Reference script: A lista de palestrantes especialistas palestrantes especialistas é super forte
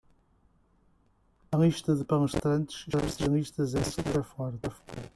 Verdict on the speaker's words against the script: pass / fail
fail